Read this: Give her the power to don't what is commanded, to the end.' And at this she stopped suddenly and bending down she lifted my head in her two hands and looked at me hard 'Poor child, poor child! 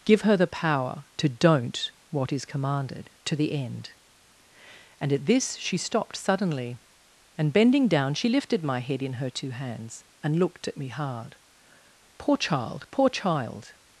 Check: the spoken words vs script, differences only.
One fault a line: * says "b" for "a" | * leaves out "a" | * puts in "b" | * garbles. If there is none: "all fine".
all fine